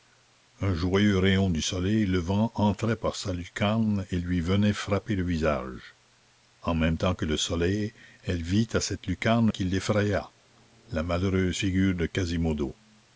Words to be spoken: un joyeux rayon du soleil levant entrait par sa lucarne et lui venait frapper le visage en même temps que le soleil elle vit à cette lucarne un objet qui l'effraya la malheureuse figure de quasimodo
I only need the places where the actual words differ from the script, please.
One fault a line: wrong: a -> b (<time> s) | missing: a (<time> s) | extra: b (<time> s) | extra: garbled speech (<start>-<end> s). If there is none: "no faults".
missing: un objet (9.5 s)